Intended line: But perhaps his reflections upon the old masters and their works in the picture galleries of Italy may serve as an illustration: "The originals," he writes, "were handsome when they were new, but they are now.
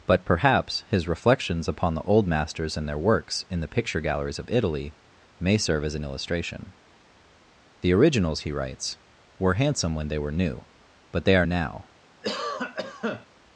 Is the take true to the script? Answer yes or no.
yes